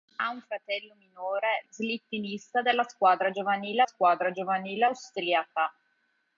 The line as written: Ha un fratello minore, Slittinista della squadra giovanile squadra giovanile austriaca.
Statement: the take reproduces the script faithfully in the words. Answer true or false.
true